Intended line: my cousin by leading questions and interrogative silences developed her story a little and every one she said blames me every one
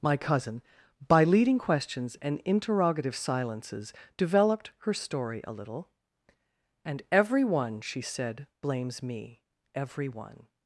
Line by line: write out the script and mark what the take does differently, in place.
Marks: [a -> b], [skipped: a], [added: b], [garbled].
my cousin by leading questions and interrogative silences developed her story a little and every one she said blames me every one